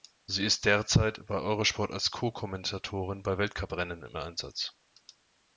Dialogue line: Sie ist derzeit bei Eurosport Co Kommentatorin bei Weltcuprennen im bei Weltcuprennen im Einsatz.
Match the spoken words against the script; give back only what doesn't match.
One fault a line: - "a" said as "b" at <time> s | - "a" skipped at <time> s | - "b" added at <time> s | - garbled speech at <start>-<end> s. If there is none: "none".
- "als" added at 1.9 s
- "bei Weltcuprennen im" skipped at 4.2 s